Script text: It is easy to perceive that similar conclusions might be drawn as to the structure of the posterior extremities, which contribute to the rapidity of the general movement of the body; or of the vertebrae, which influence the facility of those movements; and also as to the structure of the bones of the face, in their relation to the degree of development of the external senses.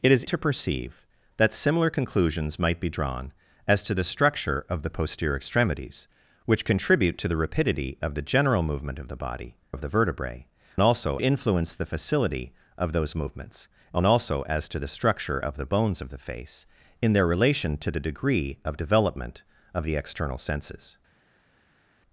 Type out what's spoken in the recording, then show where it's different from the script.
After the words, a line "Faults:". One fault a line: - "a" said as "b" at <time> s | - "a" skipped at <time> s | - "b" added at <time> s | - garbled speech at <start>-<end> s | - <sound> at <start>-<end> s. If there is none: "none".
It is to perceive that similar conclusions might be drawn as to the structure of the posterior extremities, which contribute to the rapidity of the general movement of the body; of the vertebrae, also influence the facility of those movements; and also as to the structure of the bones of the face, in their relation to the degree of development of the external senses.
Faults:
- "easy" skipped at 0.2 s
- "or" skipped at 9.5 s
- "which" said as "also" at 10.8 s